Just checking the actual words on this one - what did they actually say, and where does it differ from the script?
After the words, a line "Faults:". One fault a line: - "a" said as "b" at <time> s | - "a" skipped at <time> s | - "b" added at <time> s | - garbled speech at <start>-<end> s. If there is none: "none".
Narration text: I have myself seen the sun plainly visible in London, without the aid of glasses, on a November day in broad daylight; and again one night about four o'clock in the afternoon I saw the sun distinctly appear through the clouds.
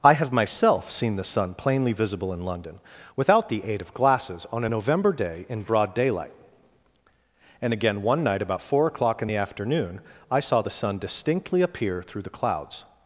I have myself seen the sun plainly visible in London, without the aid of glasses, on a November day in broad daylight; and again one night about four o'clock in the afternoon I saw the sun distinctly appear through the clouds.
Faults:
none